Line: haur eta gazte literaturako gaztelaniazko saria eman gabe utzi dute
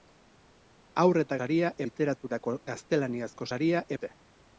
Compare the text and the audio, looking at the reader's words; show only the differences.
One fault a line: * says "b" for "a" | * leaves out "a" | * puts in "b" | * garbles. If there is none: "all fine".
* says "saria" for "gazte"
* leaves out "eman gabe utzi"